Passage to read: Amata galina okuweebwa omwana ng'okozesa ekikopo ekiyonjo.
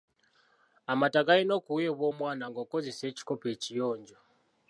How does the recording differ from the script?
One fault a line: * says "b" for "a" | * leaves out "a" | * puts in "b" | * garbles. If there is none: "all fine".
all fine